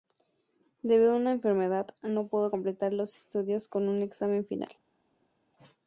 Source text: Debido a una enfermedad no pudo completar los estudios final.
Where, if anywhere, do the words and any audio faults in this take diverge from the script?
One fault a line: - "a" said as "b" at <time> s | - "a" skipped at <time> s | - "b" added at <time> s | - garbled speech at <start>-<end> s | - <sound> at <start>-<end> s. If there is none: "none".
- "con un examen" added at 3.7 s